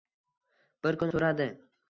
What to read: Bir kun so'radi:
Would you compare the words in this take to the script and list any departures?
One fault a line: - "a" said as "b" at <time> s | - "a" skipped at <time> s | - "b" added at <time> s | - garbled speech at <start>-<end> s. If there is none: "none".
none